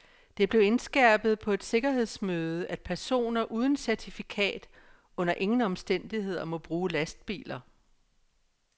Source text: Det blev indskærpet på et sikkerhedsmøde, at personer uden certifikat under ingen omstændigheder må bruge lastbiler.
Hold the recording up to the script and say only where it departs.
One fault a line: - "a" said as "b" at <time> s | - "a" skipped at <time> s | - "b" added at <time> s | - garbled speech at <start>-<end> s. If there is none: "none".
none